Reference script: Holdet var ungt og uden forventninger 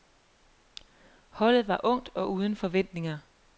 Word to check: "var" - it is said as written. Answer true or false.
true